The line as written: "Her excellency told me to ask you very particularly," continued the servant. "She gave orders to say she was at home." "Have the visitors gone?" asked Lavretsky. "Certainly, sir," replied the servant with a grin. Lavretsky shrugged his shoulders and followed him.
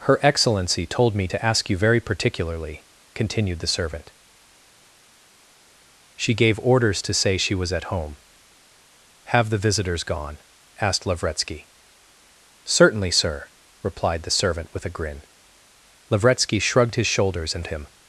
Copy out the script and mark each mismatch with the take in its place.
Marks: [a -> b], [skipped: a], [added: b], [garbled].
"Her excellency told me to ask you very particularly," continued the servant. "She gave orders to say she was at home." "Have the visitors gone?" asked Lavretsky. "Certainly, sir," replied the servant with a grin. Lavretsky shrugged his shoulders and [skipped: followed] him.